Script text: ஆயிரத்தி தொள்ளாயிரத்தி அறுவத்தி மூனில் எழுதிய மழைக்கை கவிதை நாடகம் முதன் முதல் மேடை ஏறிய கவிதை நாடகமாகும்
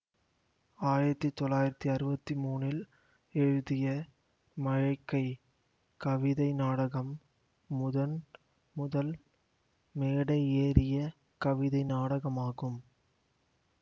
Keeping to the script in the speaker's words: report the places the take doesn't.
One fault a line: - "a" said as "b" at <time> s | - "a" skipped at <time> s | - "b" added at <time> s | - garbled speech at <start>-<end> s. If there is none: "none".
none